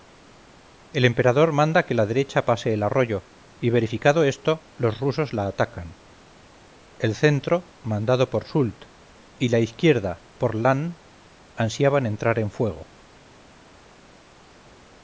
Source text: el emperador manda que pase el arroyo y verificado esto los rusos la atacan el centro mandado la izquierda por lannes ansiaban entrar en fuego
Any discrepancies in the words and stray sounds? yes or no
yes